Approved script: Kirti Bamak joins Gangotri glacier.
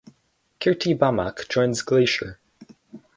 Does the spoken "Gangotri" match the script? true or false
false